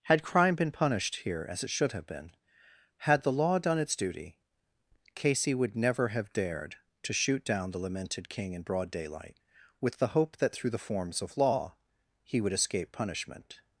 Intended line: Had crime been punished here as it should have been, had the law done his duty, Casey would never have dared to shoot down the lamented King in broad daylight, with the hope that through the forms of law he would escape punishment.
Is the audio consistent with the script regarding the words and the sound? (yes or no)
no